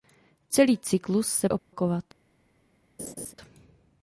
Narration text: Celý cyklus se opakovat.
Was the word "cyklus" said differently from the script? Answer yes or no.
no